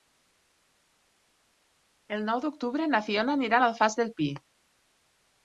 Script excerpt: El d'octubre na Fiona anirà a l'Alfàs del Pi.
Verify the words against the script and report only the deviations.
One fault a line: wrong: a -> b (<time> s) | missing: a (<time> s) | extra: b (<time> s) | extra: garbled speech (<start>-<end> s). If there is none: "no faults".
extra: nou (2.3 s)